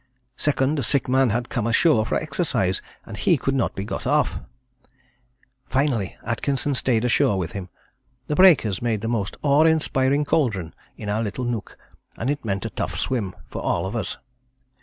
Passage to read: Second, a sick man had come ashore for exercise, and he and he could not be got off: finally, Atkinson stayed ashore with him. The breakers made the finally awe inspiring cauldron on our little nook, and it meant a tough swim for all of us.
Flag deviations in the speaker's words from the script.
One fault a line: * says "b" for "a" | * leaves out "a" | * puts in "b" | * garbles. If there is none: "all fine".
* leaves out "and he"
* says "most" for "finally"
* says "in" for "on"